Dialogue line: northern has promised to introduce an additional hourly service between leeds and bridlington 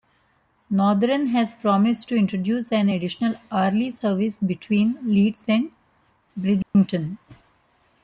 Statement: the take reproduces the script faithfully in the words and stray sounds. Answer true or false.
false